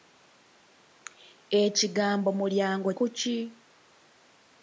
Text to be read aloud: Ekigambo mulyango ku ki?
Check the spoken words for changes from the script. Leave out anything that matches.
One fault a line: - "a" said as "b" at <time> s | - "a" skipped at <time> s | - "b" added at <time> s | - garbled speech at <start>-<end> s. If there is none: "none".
none